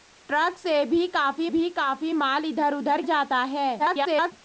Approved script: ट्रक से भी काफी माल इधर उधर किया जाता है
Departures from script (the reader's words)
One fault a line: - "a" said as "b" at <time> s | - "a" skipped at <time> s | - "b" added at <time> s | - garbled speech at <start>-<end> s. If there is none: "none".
- "भी काफी" added at 1.5 s
- "किया" skipped at 3.0 s
- garbled speech at 3.8-4.3 s